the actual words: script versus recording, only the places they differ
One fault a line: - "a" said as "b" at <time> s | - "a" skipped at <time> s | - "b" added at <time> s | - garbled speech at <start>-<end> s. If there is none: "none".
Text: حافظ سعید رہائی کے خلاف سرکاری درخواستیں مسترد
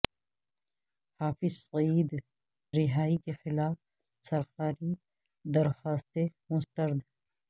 none